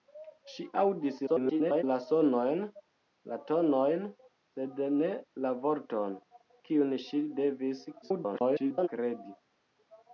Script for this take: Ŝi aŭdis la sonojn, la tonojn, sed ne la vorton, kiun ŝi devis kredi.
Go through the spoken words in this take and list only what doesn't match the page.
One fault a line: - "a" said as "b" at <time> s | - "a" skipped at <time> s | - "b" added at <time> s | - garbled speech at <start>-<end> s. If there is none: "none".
- garbled speech at 1.3-1.8 s
- garbled speech at 8.0-8.9 s